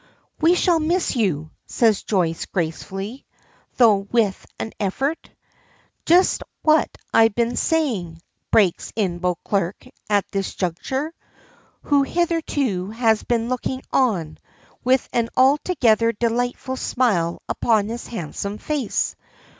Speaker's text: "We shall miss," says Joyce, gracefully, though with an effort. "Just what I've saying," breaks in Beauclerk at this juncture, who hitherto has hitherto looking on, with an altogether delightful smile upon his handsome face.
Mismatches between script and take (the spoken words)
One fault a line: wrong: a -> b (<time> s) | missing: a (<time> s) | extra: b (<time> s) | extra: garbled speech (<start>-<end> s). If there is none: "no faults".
extra: you (1.1 s)
extra: been (7.3 s)
wrong: hitherto -> been (13.2 s)